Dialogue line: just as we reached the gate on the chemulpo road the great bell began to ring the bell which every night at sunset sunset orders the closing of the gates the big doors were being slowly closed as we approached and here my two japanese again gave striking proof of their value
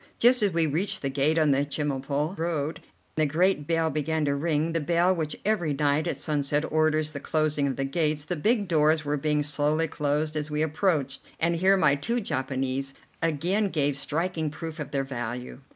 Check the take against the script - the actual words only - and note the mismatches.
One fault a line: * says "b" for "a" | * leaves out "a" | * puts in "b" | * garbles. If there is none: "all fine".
* leaves out "sunset"